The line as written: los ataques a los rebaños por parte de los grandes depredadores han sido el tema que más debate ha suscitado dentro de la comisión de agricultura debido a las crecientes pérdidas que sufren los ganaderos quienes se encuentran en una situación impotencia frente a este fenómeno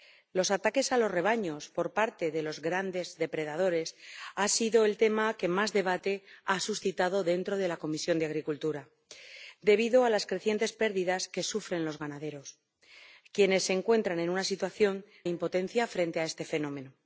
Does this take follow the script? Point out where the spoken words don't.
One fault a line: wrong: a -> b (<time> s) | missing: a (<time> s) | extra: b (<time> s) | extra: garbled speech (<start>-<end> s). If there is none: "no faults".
no faults